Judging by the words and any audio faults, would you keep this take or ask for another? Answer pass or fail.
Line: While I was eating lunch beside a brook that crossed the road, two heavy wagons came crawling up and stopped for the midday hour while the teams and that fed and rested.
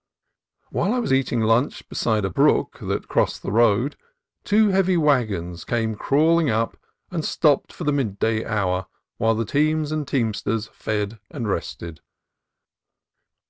fail